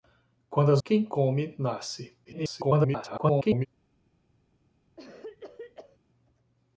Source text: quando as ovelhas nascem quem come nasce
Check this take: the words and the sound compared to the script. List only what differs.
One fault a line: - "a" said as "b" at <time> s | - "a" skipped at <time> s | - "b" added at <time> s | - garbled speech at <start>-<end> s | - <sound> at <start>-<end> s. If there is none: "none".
- "ovelhas nascem" skipped at 0.8 s
- garbled speech at 2.2-3.7 s
- cough at 5.0-6.0 s